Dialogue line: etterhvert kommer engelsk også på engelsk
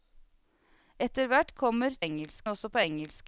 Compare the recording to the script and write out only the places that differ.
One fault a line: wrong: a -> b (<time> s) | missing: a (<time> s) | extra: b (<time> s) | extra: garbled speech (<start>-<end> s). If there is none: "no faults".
no faults